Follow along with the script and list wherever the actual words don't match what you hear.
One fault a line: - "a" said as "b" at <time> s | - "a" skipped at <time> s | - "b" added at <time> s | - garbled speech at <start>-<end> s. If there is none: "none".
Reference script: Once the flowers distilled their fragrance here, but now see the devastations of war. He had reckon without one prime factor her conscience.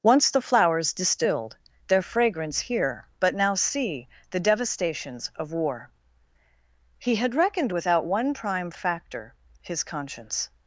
- "reckon" said as "reckoned" at 7.4 s
- "her" said as "his" at 9.6 s